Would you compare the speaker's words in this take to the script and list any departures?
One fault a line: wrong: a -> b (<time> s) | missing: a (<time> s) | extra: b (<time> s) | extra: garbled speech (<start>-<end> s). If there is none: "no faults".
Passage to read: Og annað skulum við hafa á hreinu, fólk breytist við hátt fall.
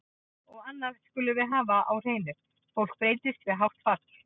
no faults